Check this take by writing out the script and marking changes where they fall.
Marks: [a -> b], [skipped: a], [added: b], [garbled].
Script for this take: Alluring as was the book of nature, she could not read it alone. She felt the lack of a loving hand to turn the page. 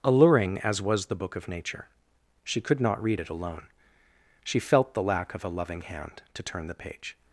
Alluring as was the book of nature, she could not read it alone. She felt the lack of a loving hand to turn the page.